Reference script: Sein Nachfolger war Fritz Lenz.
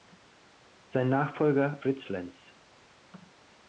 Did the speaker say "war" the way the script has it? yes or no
no